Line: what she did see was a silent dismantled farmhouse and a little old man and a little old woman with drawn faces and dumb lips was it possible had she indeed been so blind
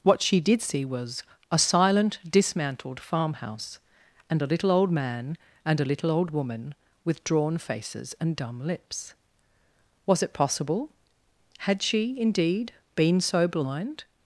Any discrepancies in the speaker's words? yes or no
no